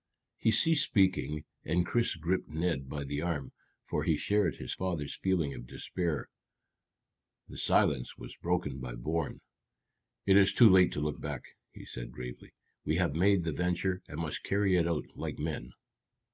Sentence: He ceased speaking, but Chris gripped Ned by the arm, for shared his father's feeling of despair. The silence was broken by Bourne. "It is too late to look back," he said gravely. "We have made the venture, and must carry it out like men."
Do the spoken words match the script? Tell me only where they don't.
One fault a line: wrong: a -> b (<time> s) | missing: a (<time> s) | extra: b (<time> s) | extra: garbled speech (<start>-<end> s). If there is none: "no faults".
wrong: but -> and (1.6 s)
extra: he (4.0 s)